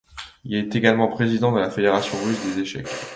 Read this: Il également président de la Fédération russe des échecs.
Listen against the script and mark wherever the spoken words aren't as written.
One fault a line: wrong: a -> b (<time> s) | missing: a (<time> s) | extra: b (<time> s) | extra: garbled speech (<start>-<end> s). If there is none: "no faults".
extra: est (0.6 s)